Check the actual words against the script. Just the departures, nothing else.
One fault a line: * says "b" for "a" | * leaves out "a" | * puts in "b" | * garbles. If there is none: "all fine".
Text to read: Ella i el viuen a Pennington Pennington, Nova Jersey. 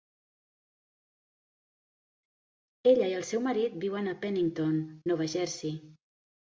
* puts in "seu marit"
* leaves out "Pennington"